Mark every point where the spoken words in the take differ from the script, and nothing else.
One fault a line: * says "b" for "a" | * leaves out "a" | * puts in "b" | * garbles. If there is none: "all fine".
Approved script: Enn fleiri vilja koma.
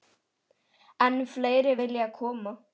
all fine